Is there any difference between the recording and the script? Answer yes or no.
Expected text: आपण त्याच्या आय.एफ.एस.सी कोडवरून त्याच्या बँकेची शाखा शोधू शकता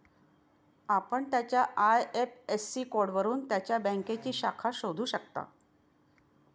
no